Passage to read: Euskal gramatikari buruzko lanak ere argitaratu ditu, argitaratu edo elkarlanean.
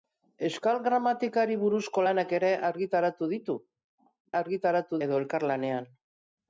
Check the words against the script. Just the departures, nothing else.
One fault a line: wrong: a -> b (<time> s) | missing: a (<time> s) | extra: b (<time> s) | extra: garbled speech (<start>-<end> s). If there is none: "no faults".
no faults